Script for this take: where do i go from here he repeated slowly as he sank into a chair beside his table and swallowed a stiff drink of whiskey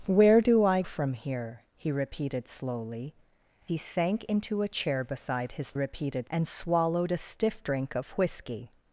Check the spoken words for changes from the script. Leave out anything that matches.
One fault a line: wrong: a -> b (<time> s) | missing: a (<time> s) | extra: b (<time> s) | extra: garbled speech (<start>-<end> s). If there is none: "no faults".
missing: go (0.8 s)
missing: as (3.1 s)
wrong: table -> repeated (5.7 s)